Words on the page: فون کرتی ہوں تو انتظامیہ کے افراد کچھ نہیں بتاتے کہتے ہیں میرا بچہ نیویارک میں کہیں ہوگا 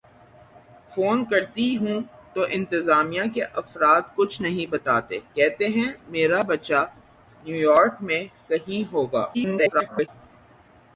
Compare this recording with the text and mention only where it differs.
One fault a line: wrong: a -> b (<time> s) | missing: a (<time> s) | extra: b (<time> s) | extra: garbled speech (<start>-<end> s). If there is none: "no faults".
extra: garbled speech (9.3-10.1 s)